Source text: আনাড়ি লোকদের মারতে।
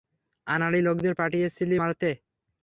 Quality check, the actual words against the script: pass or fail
fail